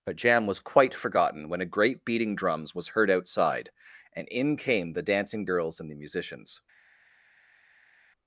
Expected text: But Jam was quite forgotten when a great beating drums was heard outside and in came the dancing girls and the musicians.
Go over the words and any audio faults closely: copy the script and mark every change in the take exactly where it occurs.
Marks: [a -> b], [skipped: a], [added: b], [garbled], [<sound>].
But Jam was quite forgotten when a great beating drums was heard outside and in came the dancing girls and the musicians.